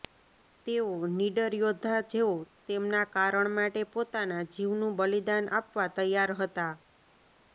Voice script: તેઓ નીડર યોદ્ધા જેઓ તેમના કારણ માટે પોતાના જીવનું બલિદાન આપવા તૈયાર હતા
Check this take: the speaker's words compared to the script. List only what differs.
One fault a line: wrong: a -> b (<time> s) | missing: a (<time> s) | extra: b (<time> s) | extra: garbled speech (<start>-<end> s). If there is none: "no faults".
no faults